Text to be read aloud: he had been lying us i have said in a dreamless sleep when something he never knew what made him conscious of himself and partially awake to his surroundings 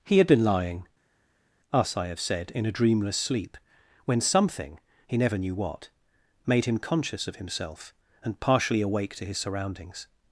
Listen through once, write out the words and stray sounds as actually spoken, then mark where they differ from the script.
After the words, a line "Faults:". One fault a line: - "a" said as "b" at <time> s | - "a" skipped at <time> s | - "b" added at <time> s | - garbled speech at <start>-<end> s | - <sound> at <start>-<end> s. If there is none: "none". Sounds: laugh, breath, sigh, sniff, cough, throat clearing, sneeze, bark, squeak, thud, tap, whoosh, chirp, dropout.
he had been lying us i have said in a dreamless sleep when something he never knew what made him conscious of himself and partially awake to his surroundings
Faults:
none